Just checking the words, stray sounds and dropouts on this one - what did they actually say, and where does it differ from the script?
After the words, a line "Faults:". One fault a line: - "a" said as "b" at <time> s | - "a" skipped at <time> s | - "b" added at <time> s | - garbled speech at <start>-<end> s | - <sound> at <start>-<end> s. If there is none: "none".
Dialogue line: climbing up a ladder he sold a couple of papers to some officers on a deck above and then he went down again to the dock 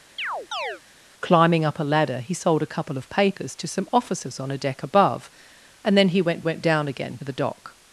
climbing up a ladder he sold a couple of papers to some officers on a deck above and then he went went down again the dock
Faults:
- chirp at 0.2-0.8 s
- "went" added at 6.4 s
- "to" skipped at 7.2 s